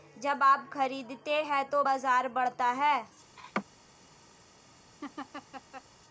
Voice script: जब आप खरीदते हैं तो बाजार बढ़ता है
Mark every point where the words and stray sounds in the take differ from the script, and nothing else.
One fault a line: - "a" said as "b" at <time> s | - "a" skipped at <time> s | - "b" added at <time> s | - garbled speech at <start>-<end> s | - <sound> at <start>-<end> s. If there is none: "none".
- laugh at 3.4-3.7 s
- laugh at 5.0-5.8 s